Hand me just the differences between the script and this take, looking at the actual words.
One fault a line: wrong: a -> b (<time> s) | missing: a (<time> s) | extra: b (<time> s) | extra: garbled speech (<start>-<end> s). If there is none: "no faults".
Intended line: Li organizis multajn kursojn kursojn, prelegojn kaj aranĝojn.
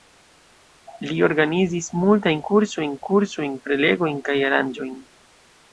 no faults